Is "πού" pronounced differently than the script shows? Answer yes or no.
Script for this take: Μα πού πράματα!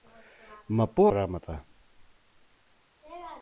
no